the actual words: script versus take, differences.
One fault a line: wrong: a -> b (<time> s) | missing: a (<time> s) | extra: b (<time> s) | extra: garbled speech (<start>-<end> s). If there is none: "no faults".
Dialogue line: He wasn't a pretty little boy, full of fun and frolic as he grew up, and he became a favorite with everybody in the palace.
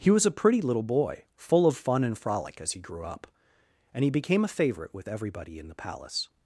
wrong: wasn't -> was (0.1 s)